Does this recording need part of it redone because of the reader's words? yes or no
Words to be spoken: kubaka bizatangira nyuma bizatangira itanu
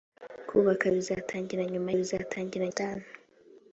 no